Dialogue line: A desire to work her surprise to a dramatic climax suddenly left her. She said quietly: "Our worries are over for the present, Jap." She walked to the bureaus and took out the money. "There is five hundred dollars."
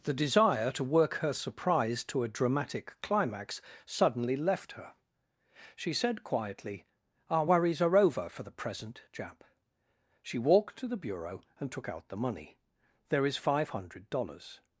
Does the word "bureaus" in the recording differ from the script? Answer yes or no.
yes